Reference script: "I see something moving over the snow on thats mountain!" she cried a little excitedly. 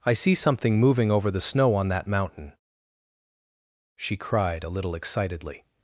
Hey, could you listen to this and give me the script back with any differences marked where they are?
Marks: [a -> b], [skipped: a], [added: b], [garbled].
"I see something moving over the snow on [thats -> that] mountain!" she cried a little excitedly.